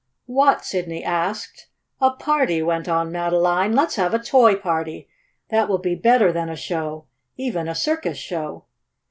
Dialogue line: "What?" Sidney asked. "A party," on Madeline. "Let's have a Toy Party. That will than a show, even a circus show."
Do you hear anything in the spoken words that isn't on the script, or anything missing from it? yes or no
yes